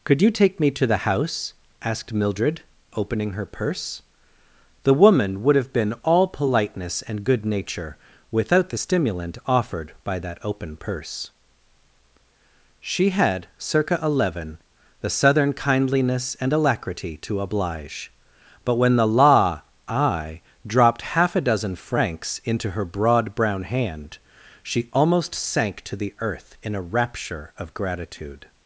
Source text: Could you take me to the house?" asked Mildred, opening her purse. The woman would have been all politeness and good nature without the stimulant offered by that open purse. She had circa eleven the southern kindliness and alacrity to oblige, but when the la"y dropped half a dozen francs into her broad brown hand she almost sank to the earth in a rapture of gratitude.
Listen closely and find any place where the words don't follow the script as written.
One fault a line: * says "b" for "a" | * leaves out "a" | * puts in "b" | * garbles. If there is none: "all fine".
* says "law I" for "la"y"